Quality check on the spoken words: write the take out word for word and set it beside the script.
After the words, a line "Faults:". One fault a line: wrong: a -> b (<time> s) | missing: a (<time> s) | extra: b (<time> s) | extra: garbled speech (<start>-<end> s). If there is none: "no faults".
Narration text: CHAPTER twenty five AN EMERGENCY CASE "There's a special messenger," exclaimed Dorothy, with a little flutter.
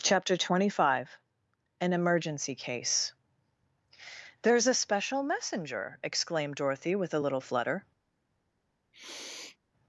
CHAPTER twenty five AN EMERGENCY CASE "There's a special messenger," exclaimed Dorothy, with a little flutter.
Faults:
no faults